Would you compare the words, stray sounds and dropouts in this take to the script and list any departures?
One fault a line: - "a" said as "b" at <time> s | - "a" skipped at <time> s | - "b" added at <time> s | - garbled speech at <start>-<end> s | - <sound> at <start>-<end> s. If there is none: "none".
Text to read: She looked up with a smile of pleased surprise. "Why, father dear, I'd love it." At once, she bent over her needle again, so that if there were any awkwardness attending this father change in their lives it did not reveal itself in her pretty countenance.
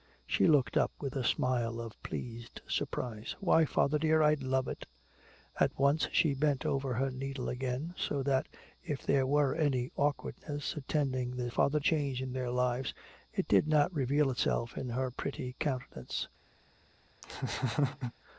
- laugh at 17.2-18.1 s